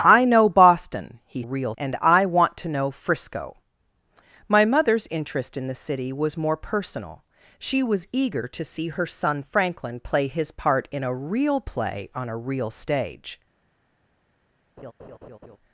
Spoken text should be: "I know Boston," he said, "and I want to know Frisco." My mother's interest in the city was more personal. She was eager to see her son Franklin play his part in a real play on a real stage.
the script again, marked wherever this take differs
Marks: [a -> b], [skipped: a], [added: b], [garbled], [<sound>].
"I know Boston," he [said, -> real] "and I want to know Frisco." My mother's interest in the city was more personal. She was eager to see her son Franklin play his part in a real play on a real stage. [laugh]